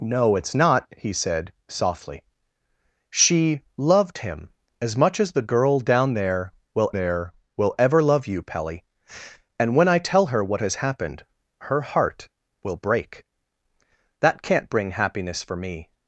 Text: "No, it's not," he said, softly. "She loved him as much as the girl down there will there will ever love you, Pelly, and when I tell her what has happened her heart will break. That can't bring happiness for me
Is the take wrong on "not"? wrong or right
right